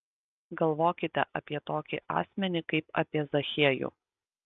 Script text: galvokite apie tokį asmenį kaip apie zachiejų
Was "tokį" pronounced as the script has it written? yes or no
yes